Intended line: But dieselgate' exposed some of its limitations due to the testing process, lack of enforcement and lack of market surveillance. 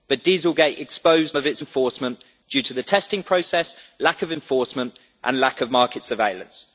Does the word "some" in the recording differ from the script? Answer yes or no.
yes